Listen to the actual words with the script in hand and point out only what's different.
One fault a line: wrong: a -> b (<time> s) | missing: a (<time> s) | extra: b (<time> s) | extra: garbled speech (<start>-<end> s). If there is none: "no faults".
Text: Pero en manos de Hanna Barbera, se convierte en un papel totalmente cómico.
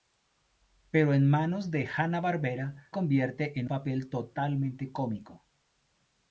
missing: se (2.9 s)
missing: un (3.7 s)